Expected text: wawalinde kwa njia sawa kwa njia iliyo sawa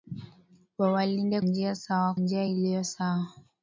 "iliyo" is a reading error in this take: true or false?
false